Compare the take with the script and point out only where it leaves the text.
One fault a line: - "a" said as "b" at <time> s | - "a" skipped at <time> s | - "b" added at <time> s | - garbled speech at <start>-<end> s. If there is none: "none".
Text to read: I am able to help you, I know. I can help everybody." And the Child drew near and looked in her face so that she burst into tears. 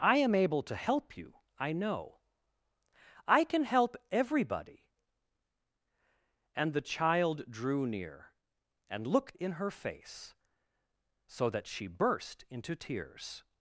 none